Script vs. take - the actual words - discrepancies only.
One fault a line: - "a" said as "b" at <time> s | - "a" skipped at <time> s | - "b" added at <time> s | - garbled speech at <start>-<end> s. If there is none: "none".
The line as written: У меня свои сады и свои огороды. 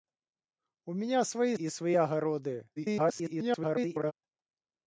- "сады" skipped at 1.6 s
- garbled speech at 2.8-4.1 s